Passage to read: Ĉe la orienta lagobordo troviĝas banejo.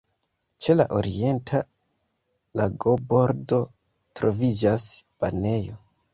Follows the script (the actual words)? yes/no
yes